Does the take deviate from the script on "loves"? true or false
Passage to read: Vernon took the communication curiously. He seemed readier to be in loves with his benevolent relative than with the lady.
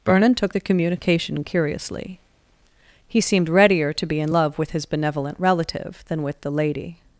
true